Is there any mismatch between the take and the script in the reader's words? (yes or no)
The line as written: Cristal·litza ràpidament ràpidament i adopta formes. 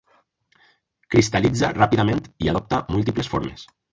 yes